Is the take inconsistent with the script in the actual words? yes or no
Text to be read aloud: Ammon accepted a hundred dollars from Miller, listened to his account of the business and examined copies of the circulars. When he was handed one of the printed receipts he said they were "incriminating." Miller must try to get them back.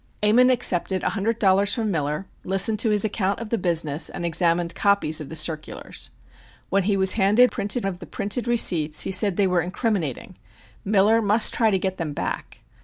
yes